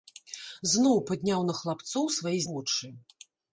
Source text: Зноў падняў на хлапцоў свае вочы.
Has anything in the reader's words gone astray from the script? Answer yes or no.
no